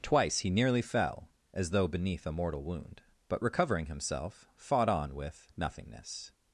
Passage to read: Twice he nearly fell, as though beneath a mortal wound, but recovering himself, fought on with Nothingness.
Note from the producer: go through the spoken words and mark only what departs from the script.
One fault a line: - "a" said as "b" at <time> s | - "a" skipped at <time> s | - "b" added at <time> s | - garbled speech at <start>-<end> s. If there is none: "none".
none